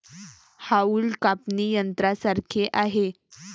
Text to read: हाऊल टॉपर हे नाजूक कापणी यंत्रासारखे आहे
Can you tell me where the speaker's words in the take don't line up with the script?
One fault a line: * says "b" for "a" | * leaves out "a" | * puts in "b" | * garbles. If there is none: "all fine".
* leaves out "टॉपर हे नाजूक"